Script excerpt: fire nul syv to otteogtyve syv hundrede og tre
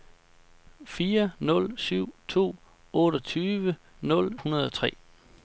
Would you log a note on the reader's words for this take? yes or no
yes